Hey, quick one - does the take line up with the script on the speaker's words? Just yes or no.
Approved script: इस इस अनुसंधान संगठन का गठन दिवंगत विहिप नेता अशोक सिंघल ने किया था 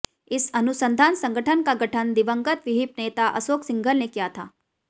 no